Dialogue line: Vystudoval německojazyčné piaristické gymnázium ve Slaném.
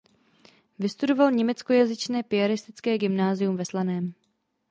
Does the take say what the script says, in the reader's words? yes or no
yes